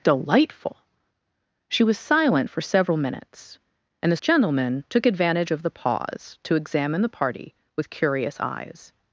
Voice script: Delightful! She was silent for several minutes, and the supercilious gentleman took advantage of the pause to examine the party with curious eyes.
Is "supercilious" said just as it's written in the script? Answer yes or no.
no